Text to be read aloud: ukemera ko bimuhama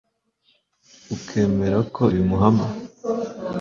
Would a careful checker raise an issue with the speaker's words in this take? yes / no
no